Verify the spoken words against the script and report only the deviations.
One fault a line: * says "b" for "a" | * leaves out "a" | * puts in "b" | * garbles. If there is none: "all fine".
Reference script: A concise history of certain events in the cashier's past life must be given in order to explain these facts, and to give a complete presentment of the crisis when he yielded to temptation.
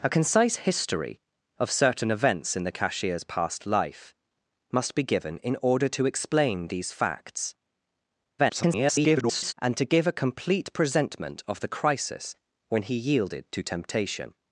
* garbles